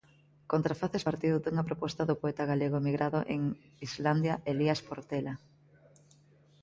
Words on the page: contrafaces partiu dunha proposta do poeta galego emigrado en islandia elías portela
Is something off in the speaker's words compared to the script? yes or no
no